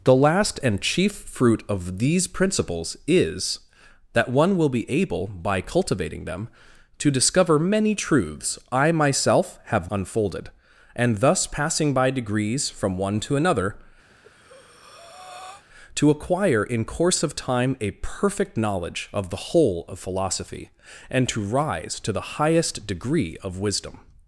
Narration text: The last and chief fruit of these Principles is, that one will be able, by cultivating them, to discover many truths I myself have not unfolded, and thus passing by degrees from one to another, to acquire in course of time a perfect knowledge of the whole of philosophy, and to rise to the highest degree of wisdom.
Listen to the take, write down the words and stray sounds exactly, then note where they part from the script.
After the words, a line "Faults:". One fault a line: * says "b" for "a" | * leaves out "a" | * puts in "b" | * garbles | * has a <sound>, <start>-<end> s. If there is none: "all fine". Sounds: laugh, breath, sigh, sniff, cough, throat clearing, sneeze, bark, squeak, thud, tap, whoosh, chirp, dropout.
The last and chief fruit of these Principles is, that one will be able, by cultivating them, to discover many truths I myself have unfolded, and thus passing by degrees from one to another, to acquire in course of time a perfect knowledge of the whole of philosophy, and to rise to the highest degree of wisdom.
Faults:
* leaves out "not"
* has a breath, 14.1-15.6 s